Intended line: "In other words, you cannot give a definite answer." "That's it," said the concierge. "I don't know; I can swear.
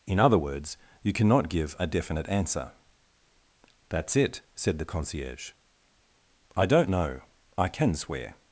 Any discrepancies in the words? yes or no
no